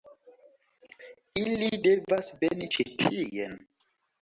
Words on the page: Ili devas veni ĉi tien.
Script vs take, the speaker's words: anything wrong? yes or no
no